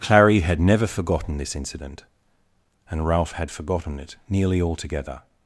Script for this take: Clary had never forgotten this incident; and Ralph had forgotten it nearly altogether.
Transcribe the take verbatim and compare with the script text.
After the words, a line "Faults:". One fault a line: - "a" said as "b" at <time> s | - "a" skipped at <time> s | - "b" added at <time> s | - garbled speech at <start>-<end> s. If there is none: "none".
Clary had never forgotten this incident; and Ralph had forgotten it nearly altogether.
Faults:
none